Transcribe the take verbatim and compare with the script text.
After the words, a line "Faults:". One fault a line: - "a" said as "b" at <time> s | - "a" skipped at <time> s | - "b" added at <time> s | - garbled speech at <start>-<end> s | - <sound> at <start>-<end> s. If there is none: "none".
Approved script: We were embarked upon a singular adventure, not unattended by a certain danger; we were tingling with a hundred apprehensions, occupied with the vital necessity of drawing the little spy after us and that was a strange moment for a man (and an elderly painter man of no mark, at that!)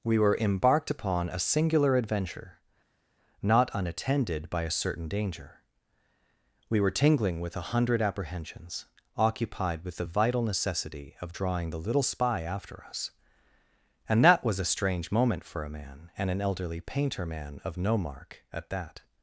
We were embarked upon a singular adventure, not unattended by a certain danger; we were tingling with a hundred apprehensions, occupied with the vital necessity of drawing the little spy after us and that was a strange moment for a man (and an elderly painter man of no mark, at that!)
Faults:
none